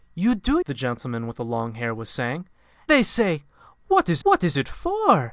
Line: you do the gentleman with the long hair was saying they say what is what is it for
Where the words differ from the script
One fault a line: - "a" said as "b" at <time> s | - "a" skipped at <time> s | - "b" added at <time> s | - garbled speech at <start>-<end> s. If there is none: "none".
none